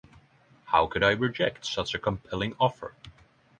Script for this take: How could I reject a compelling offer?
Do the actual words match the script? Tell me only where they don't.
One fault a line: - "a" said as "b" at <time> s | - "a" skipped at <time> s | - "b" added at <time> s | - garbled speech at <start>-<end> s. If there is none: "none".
- "such" added at 1.6 s